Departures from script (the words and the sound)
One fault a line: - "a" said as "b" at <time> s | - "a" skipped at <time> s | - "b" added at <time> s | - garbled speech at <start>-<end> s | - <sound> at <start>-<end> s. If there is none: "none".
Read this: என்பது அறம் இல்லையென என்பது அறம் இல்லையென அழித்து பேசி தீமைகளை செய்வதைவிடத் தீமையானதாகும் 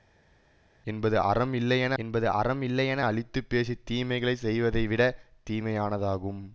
none